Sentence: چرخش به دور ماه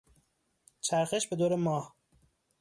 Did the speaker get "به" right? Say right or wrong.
right